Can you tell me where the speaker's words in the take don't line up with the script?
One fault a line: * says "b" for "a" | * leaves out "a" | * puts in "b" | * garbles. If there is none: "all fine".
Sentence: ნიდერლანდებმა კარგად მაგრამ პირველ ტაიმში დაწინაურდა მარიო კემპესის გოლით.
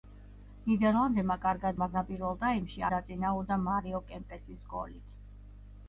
all fine